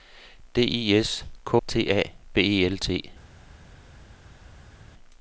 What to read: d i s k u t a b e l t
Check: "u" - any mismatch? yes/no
yes